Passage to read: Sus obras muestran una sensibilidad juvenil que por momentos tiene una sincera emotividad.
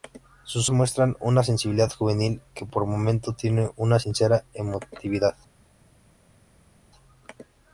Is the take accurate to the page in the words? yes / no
no